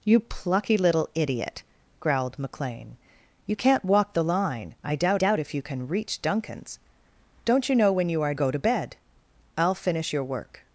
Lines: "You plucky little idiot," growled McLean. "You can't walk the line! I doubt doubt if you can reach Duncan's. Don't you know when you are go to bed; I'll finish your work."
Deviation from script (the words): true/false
false